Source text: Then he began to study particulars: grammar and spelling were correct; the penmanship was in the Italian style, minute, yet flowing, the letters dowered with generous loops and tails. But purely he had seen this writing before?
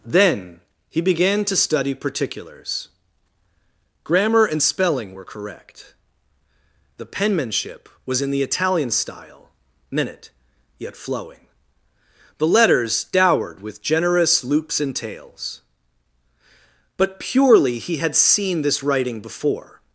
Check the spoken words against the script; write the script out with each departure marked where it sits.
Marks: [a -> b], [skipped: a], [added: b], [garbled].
Then he began to study particulars: grammar and spelling were correct; the penmanship was in the Italian style, minute, yet flowing, the letters dowered with generous loops and tails. But purely he had seen this writing before?